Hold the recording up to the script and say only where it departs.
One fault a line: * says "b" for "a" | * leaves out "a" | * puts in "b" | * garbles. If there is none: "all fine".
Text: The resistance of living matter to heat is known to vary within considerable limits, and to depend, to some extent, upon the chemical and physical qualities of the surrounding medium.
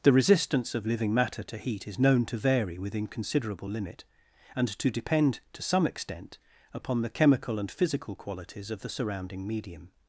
* says "limit" for "limits"